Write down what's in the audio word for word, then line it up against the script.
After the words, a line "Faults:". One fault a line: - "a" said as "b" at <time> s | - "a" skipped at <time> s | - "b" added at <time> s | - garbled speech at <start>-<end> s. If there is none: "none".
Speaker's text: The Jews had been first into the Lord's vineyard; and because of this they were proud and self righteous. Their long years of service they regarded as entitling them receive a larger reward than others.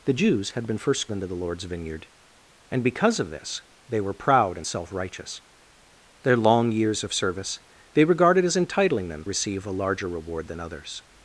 The Jews had been first into the Lord's vineyard; and because of this they were proud and self righteous. Their long years of service they regarded as entitling them receive a larger reward than others.
Faults:
none